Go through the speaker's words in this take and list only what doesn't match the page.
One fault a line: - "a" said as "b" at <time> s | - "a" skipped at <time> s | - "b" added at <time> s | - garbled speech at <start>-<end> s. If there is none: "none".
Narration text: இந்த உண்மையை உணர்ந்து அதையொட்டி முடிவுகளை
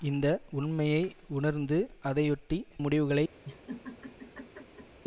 none